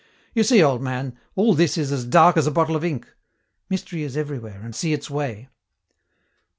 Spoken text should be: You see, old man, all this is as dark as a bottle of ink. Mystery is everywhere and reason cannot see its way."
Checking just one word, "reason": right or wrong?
wrong